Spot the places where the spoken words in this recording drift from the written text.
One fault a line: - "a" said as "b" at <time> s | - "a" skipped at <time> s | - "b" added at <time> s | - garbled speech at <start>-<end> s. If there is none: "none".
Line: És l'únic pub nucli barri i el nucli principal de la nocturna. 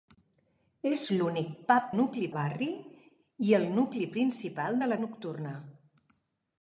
none